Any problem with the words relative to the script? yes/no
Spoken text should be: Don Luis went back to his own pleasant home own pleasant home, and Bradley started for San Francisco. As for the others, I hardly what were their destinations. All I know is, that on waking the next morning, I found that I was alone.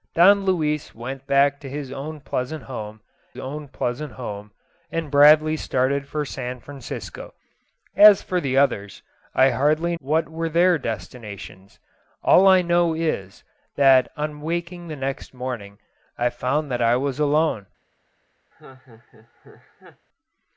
no